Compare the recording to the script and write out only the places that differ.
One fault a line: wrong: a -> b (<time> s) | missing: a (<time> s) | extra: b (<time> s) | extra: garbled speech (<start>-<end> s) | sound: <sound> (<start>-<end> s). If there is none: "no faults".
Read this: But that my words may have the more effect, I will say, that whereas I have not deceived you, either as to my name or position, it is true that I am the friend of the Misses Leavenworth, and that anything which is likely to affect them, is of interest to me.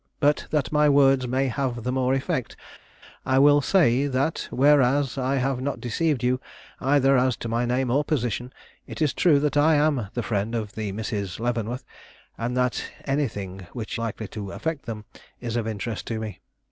missing: is (14.0 s)